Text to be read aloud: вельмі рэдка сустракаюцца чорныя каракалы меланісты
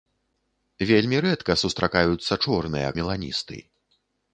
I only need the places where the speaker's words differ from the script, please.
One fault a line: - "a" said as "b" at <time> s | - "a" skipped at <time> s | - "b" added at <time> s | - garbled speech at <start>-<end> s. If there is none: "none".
- "каракалы" skipped at 2.9 s